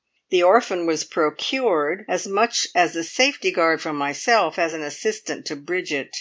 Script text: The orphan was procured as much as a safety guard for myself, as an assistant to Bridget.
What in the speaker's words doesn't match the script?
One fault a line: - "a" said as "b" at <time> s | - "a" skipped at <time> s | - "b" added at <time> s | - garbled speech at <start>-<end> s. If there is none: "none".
none